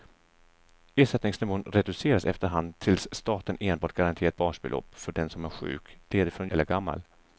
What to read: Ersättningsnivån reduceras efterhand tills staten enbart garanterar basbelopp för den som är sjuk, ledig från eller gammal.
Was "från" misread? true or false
false